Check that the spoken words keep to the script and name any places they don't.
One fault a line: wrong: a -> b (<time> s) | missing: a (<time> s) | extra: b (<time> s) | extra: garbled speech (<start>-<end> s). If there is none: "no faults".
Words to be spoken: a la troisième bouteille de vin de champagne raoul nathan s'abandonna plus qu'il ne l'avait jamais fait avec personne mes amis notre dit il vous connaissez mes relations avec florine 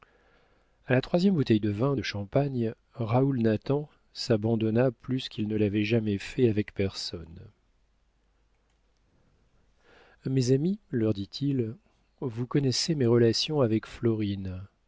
wrong: notre -> leur (10.9 s)